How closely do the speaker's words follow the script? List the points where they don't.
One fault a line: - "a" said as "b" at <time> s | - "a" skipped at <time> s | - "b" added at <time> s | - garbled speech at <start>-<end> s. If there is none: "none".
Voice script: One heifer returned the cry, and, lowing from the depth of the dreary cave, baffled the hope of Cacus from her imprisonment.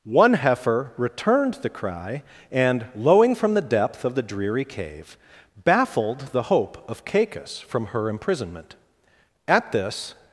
- "At this" added at 9.5 s